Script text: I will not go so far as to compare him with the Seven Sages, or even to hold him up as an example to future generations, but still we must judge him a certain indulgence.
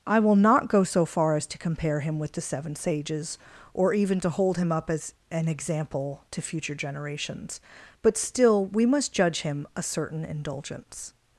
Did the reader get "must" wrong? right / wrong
right